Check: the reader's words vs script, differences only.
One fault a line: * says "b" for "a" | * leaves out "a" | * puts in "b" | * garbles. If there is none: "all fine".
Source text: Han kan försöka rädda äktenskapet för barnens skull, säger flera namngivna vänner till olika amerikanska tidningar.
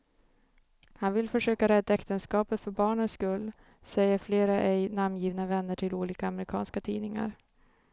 * says "vill" for "kan"
* puts in "ej"